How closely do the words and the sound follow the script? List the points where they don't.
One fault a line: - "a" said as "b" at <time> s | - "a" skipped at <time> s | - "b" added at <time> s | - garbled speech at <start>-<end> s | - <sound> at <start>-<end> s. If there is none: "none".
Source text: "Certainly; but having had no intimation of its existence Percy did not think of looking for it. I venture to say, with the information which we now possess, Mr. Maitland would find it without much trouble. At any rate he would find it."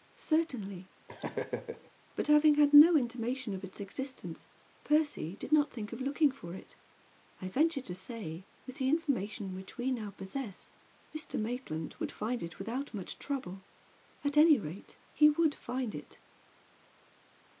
- laugh at 1.1-1.9 s